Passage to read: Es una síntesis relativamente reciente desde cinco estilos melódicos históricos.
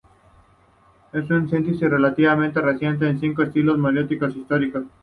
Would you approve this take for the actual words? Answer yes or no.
no